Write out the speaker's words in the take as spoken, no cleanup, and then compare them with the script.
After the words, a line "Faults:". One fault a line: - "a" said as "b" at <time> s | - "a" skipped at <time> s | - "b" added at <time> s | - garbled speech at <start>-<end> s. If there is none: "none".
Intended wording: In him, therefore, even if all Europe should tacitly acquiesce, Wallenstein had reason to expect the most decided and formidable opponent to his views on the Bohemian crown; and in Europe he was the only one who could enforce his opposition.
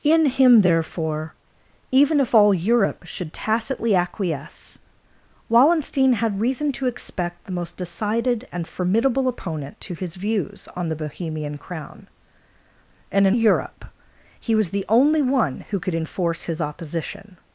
In him, therefore, even if all Europe should tacitly acquiesce, Wallenstein had reason to expect the most decided and formidable opponent to his views on the Bohemian crown; and in Europe he was the only one who could enforce his opposition.
Faults:
none